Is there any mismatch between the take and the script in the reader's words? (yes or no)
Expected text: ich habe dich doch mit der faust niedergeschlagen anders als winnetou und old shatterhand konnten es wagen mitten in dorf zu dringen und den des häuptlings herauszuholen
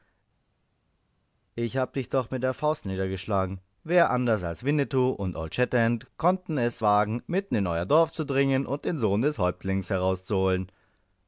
yes